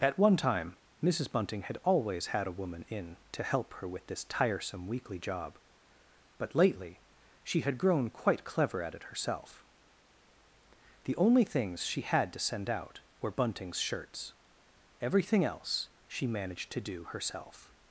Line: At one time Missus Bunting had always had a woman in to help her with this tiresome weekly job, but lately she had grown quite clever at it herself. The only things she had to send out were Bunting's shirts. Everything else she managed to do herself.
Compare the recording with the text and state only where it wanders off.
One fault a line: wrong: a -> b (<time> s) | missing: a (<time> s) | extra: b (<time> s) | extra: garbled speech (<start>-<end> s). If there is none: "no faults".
no faults